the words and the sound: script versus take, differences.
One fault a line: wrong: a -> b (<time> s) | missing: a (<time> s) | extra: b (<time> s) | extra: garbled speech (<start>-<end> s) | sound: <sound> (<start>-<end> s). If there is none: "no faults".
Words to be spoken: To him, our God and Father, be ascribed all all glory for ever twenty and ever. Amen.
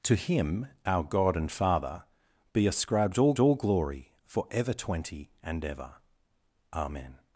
no faults